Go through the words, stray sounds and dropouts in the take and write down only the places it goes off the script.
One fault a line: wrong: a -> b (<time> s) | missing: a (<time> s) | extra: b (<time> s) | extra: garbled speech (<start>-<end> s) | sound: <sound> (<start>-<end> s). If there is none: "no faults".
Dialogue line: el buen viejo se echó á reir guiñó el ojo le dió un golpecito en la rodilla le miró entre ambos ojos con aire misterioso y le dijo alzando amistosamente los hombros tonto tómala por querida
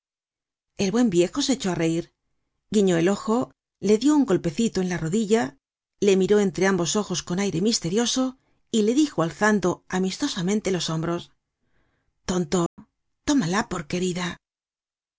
sound: dropout (12.7-12.8 s)